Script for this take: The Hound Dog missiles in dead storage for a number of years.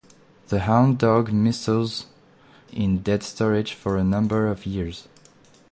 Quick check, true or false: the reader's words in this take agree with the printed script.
true